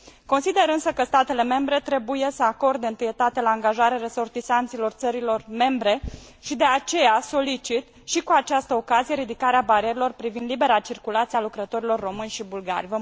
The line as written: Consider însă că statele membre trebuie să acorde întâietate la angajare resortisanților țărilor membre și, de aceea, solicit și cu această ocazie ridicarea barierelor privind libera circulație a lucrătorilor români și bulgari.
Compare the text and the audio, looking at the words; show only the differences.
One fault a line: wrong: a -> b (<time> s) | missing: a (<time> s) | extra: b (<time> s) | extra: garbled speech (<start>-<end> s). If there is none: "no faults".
no faults